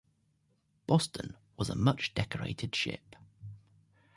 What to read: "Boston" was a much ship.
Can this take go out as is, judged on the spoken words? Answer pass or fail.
fail